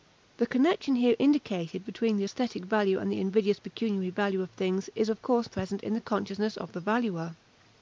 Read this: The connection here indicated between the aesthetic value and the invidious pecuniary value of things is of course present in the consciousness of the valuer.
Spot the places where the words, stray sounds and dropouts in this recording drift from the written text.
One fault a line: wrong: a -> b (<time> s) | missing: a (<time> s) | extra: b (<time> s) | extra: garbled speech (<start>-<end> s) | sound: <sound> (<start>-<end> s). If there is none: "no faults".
no faults